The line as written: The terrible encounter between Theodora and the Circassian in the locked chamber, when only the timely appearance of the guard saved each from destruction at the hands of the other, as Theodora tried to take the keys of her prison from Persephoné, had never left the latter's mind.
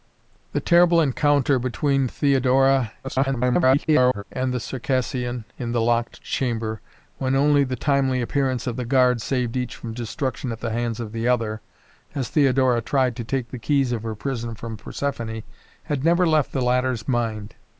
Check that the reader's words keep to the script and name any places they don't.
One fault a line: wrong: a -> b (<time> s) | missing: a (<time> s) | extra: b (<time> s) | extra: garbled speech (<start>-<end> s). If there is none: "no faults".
extra: garbled speech (3.0-4.2 s)